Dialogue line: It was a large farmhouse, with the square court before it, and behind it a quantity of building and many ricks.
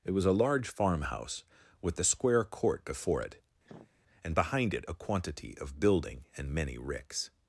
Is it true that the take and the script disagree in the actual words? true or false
false